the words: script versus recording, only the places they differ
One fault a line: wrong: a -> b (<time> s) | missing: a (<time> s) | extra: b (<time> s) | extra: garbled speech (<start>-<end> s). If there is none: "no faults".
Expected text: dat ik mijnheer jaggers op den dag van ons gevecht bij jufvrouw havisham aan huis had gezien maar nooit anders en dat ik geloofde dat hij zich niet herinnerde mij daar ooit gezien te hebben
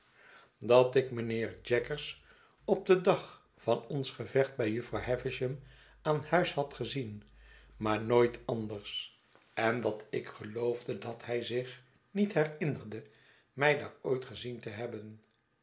no faults